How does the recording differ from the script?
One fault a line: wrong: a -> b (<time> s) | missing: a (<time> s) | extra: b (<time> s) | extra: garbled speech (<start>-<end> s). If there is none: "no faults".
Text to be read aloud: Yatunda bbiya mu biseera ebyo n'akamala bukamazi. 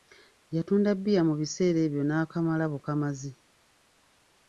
no faults